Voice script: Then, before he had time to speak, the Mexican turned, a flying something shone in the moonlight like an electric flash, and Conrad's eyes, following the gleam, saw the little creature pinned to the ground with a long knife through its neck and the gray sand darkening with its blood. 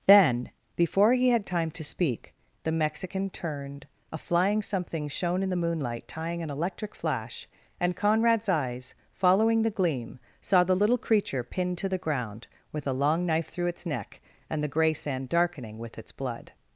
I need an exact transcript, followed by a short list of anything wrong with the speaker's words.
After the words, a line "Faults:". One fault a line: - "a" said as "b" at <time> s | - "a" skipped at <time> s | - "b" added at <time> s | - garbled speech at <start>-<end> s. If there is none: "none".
Then, before he had time to speak, the Mexican turned, a flying something shone in the moonlight tying an electric flash, and Conrad's eyes, following the gleam, saw the little creature pinned to the ground with a long knife through its neck and the gray sand darkening with its blood.
Faults:
- "like" said as "tying" at 6.1 s